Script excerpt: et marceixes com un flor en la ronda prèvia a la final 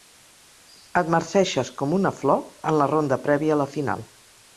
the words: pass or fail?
fail